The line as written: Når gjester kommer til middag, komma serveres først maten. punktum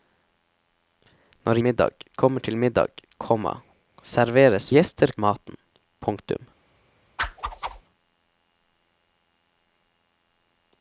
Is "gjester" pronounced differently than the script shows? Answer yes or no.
yes